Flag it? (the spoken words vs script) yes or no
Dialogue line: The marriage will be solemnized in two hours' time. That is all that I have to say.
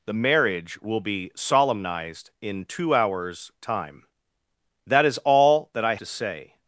yes